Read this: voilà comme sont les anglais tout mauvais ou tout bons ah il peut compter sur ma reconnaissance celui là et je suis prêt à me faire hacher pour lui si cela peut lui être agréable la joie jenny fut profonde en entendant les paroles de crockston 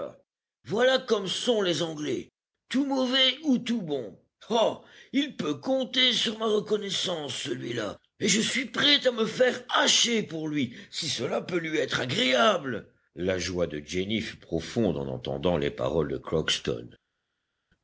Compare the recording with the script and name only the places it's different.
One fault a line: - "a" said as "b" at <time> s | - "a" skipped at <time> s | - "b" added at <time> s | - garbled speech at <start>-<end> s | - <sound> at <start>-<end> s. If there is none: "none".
- "de" added at 13.7 s